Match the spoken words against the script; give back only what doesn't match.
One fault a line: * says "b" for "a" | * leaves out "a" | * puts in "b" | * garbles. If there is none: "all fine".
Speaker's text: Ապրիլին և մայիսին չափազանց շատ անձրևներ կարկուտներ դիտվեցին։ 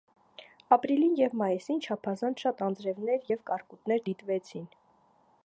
* puts in "և"